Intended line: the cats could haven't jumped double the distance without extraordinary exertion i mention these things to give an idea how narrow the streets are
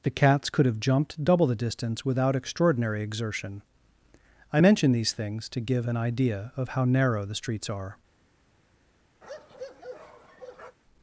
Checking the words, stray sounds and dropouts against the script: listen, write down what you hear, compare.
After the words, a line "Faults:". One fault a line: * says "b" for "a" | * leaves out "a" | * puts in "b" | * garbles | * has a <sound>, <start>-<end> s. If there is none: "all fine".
the cats could have jumped double the distance without extraordinary exertion i mention these things to give an idea of how narrow the streets are
Faults:
* says "have" for "haven't"
* puts in "of"
* has a bark, 9.2-10.8 s